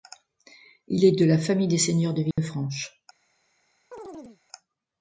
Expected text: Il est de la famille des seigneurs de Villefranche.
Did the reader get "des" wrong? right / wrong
right